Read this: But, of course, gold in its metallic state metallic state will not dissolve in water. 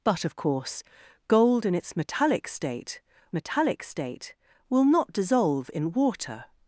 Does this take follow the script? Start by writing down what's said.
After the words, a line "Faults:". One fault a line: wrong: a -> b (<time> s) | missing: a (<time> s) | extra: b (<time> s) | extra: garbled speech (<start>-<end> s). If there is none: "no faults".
But, of course, gold in its metallic state metallic state will not dissolve in water.
Faults:
no faults